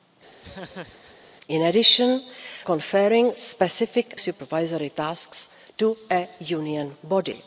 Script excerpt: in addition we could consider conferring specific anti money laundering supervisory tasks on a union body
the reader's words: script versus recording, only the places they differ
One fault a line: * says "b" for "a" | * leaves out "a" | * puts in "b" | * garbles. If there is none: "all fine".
* leaves out "we could consider"
* leaves out "anti money laundering"